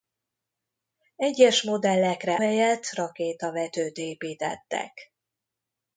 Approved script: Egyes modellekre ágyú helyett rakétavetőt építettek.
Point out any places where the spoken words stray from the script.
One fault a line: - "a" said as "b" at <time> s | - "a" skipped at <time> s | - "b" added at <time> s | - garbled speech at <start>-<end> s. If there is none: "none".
- "ágyú" skipped at 2.4 s